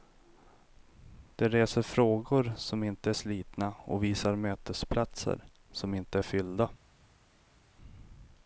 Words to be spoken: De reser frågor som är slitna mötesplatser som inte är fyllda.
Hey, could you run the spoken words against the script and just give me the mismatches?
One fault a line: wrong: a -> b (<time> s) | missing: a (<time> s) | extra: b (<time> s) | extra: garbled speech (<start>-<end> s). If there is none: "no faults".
extra: inte (2.8 s)
extra: och visar (3.8 s)